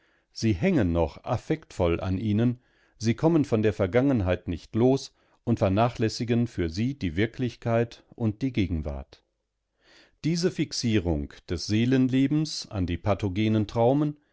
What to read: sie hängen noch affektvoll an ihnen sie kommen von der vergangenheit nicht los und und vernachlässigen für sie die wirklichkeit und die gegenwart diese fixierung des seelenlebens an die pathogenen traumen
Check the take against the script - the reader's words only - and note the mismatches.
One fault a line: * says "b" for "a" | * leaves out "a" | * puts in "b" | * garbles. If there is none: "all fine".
* leaves out "und"